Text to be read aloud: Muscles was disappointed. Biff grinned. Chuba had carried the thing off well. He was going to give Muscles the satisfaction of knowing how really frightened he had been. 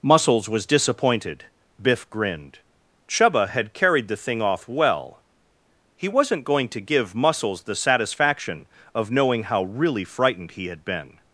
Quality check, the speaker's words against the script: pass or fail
fail